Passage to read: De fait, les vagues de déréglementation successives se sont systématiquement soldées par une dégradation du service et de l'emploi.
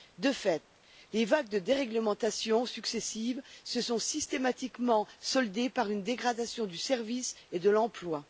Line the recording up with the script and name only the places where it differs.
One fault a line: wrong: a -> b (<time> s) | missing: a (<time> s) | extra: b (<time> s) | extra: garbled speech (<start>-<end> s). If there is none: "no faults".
no faults